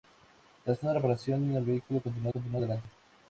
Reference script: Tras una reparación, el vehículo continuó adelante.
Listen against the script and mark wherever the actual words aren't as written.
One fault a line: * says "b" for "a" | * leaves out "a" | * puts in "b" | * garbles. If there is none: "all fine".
* puts in "continuó"